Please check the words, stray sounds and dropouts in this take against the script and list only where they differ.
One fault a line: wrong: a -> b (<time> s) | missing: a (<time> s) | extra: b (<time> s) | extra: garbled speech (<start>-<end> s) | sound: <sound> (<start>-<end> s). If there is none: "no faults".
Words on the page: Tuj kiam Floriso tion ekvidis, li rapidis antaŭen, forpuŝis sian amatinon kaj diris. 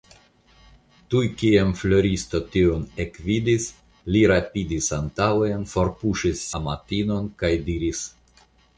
missing: sian (6.5 s)